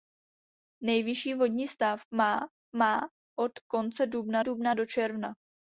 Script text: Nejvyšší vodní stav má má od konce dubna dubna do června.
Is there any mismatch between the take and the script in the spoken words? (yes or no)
no